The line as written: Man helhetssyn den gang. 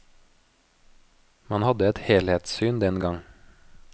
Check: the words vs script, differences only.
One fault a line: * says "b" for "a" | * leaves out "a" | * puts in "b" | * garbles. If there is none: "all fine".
* puts in "hadde et"